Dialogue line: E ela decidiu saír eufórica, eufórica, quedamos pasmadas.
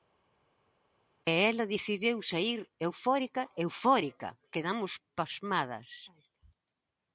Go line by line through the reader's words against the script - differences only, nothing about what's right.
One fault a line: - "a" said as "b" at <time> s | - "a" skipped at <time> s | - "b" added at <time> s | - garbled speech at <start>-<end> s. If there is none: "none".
none